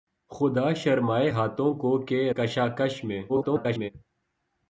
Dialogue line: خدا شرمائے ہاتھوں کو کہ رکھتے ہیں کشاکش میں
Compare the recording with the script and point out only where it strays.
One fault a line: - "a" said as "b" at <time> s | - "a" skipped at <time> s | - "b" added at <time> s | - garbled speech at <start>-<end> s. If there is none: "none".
- "رکھتے ہیں" skipped at 2.3 s
- garbled speech at 3.3-3.9 s